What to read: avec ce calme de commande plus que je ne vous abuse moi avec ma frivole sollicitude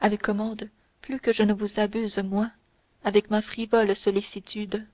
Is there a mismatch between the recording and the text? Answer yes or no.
yes